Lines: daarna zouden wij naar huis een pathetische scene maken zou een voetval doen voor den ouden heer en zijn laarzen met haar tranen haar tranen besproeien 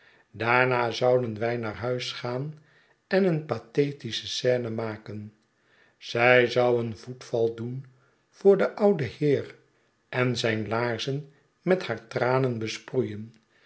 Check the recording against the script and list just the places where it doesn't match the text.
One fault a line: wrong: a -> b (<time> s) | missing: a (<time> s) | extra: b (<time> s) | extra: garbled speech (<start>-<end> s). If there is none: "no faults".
extra: gaan en (2.1 s)
extra: zij (6.0 s)
missing: haar tranen (12.6 s)